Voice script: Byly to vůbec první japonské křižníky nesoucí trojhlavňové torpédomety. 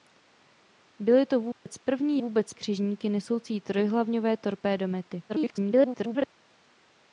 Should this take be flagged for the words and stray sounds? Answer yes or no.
yes